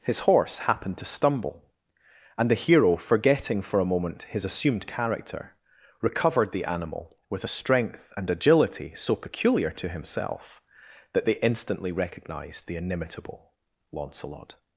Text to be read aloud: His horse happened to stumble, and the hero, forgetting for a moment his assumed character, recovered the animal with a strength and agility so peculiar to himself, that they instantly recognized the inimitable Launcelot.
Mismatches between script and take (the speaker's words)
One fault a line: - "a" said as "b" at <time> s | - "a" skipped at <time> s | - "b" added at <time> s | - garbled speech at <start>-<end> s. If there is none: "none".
none